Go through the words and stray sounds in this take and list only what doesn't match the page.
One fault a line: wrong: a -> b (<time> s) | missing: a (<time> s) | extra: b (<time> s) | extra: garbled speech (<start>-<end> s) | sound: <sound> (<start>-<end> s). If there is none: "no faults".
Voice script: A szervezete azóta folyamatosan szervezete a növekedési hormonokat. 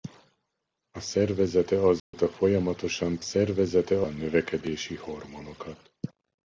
sound: dropout (2.0-2.1 s)